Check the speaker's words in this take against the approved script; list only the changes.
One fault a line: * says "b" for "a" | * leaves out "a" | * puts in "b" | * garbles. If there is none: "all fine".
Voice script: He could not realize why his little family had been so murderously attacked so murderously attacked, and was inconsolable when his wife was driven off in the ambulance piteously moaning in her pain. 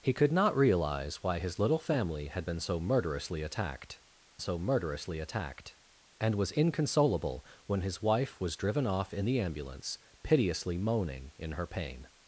all fine